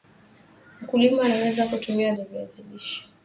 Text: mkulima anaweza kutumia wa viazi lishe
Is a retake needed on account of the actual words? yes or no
no